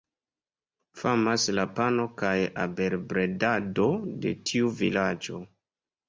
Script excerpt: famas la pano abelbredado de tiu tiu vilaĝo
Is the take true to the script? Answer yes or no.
no